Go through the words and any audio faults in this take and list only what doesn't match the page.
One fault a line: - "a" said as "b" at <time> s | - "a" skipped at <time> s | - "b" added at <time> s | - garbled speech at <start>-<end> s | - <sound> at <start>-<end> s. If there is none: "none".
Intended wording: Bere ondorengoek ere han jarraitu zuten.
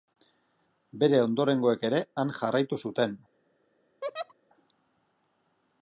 - laugh at 4.0-4.3 s